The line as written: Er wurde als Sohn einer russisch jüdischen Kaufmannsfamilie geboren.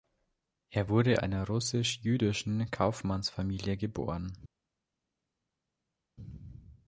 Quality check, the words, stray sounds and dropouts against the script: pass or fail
fail